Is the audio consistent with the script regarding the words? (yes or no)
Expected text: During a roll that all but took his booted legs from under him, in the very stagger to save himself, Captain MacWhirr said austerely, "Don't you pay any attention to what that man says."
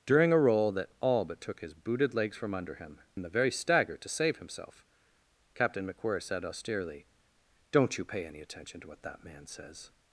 yes